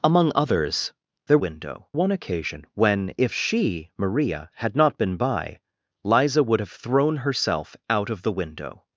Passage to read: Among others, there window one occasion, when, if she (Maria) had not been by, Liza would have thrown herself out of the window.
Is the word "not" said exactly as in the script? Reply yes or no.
yes